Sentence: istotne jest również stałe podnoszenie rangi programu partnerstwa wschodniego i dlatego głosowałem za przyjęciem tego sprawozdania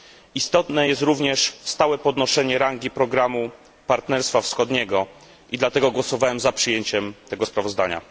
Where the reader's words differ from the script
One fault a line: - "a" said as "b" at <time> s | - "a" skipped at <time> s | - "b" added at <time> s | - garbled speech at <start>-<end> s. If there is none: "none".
none